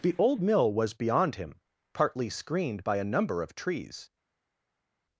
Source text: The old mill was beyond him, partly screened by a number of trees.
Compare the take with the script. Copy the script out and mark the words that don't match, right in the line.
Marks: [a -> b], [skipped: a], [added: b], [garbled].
The old mill was beyond him, partly screened by a number of trees.